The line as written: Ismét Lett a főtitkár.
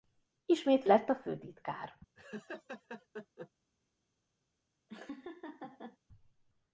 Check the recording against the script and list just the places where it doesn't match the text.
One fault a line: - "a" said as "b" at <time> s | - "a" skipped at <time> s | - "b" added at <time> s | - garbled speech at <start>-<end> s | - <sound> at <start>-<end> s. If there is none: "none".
- laugh at 2.1-3.5 s
- laugh at 4.9-6.0 s